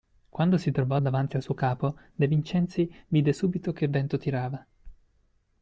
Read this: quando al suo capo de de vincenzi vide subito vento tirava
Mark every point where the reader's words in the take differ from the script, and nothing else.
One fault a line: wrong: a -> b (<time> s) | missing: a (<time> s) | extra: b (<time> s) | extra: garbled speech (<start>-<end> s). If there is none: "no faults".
extra: si trovò davanti (0.6 s)
missing: de (2.3 s)
extra: che (3.7 s)